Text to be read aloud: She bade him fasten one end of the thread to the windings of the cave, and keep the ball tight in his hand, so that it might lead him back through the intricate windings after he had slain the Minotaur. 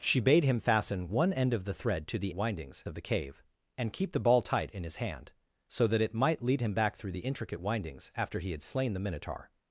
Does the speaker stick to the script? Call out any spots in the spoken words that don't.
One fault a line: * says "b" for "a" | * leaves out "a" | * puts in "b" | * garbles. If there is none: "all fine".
all fine